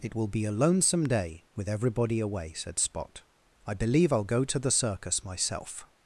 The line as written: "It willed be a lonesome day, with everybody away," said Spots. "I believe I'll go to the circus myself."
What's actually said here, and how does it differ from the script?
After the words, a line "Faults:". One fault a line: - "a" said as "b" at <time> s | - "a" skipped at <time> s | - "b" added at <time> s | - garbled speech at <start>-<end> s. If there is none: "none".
"It will be a lonesome day, with everybody away," said Spot. "I believe I'll go to the circus myself."
Faults:
- "willed" said as "will" at 0.1 s
- "Spots" said as "Spot" at 2.8 s